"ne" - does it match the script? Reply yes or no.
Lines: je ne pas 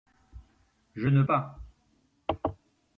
yes